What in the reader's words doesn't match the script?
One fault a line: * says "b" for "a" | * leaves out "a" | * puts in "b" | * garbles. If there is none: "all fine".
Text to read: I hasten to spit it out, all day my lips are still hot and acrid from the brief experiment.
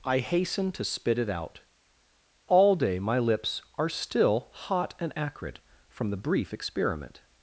all fine